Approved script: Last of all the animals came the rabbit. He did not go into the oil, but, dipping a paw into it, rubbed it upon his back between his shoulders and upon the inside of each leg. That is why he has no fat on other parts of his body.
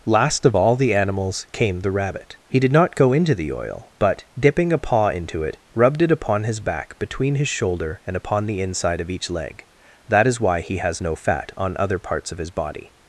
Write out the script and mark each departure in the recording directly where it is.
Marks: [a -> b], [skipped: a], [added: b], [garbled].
Last of all the animals came the rabbit. He did not go into the oil, but, dipping a paw into it, rubbed it upon his back between his [shoulders -> shoulder] and upon the inside of each leg. That is why he has no fat on other parts of his body.